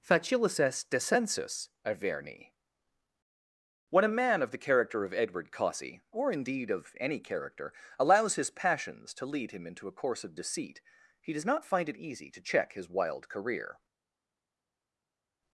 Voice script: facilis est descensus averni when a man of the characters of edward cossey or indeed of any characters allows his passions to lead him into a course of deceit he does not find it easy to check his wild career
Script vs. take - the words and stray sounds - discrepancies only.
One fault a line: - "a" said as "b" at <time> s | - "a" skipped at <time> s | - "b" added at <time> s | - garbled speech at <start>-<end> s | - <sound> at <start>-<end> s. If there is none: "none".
- "characters" said as "character" at 4.6 s
- "characters" said as "character" at 7.2 s